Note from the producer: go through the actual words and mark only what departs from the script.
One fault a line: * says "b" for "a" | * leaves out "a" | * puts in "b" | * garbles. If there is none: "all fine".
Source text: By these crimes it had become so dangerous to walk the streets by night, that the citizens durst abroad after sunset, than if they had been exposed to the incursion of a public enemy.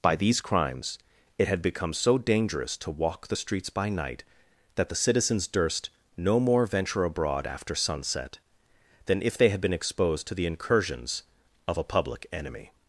* puts in "no more venture"
* says "incursions" for "incursion"